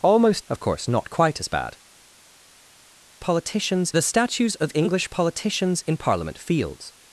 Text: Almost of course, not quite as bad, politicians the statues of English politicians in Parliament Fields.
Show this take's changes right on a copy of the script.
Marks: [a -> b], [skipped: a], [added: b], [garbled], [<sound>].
Almost of course, not quite as bad, politicians the statues of English politicians in Parliament Fields.